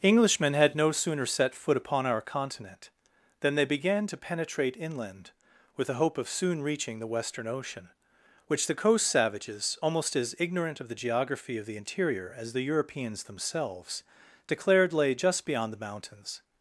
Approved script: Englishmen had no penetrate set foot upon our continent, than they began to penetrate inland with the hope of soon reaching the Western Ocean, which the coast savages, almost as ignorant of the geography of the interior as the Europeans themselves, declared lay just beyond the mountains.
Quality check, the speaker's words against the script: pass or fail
fail